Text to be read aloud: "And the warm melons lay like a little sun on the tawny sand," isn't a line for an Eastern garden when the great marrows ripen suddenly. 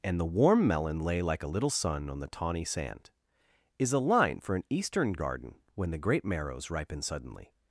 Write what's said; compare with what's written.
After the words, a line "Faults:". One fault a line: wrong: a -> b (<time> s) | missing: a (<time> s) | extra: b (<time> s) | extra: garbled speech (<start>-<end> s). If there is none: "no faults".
"And the warm melon lay like a little sun on the tawny sand," is a line for an Eastern garden when the great marrows ripen suddenly.
Faults:
wrong: melons -> melon (0.7 s)
wrong: isn't -> is (3.8 s)